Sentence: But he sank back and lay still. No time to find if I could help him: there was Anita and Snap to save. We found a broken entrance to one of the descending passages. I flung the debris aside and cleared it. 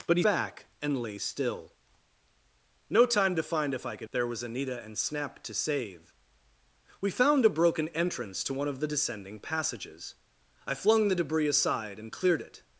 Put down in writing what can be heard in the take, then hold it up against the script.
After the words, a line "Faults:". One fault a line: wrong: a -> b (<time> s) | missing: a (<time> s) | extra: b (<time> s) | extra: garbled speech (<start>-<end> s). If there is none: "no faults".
But he back and lay still. No time to find if I could: there was Anita and Snap to save. We found a broken entrance to one of the descending passages. I flung the debris aside and cleared it.
Faults:
missing: sank (0.2 s)
missing: help him (4.1 s)